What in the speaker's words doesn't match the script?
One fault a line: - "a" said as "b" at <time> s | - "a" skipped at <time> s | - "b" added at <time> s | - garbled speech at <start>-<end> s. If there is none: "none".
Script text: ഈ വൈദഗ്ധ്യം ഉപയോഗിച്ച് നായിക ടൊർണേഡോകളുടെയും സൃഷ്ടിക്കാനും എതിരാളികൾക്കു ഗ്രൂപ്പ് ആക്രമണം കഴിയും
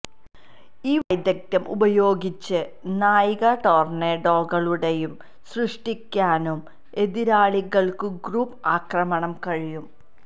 none